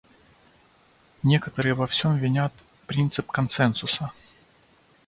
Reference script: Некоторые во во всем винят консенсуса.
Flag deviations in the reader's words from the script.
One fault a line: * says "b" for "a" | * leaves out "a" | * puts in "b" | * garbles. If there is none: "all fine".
* leaves out "во"
* puts in "принцип"